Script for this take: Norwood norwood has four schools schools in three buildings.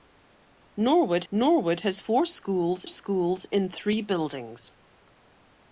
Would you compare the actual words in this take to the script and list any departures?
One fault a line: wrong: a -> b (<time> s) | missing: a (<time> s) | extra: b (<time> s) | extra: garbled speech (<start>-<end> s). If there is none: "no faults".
no faults